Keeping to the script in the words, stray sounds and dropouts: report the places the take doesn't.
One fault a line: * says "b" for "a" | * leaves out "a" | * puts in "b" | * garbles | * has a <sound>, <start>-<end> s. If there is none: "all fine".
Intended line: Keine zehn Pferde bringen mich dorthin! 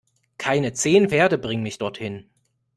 all fine